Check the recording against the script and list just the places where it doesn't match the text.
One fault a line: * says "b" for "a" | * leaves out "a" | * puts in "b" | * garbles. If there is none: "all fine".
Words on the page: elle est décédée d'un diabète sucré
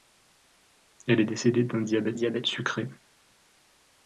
* puts in "diabète"